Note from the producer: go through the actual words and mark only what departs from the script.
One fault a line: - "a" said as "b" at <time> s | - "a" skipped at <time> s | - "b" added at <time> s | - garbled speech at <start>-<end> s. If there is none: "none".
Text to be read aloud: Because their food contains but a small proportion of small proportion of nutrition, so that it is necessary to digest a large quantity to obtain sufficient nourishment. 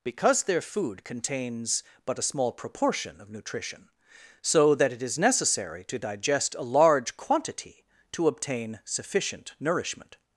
- "small proportion of" skipped at 3.3 s